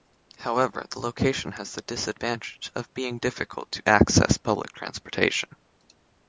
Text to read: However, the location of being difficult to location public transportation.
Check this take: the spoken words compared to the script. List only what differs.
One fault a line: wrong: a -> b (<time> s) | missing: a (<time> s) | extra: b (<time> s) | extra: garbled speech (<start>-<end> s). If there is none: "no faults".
extra: has the disadvantage (1.5 s)
wrong: location -> access (3.9 s)